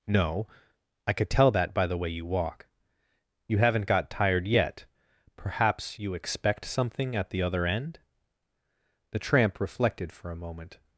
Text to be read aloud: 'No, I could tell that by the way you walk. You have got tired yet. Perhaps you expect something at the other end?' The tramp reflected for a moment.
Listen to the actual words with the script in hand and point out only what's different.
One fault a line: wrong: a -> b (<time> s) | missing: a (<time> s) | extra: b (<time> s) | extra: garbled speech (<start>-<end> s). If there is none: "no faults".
wrong: have -> haven't (3.6 s)